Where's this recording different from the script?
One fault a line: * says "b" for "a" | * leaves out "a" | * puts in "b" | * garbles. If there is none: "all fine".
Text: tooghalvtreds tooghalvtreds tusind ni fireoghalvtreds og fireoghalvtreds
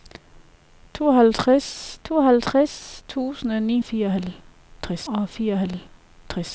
all fine